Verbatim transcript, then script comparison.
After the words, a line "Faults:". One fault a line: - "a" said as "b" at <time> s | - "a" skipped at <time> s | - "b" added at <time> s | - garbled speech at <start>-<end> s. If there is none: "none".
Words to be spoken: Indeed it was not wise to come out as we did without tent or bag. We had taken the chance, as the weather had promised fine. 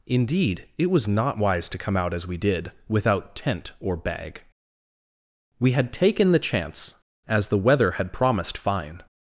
Indeed it was not wise to come out as we did without tent or bag. We had taken the chance, as the weather had promised fine.
Faults:
none